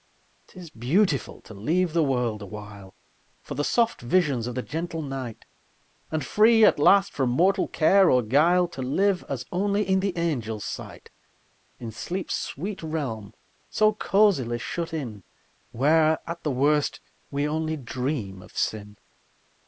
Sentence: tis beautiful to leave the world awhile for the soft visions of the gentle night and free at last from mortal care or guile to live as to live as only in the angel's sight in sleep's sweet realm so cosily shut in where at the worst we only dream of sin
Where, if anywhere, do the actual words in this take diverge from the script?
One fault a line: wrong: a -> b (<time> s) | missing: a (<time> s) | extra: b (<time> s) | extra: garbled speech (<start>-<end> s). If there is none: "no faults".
missing: to live as (9.4 s)